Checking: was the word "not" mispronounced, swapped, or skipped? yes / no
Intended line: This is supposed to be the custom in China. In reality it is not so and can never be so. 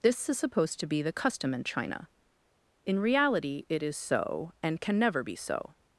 yes